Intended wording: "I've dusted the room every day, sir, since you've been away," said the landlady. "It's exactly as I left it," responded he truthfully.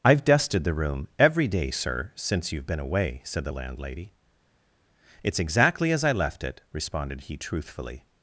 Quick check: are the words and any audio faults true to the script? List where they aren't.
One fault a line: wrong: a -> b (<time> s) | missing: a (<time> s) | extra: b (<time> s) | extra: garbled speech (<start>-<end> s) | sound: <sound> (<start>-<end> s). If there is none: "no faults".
no faults